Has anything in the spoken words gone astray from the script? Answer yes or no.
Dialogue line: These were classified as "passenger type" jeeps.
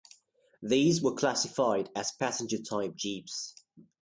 no